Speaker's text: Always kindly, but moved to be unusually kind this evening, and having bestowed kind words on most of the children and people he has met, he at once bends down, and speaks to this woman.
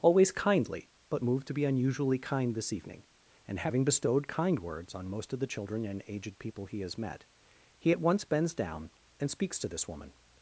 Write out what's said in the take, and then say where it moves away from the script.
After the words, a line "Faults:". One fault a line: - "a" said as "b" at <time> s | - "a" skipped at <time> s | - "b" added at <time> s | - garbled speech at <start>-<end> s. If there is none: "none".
Always kindly, but moved to be unusually kind this evening, and having bestowed kind words on most of the children and aged people he has met, he at once bends down, and speaks to this woman.
Faults:
- "aged" added at 6.1 s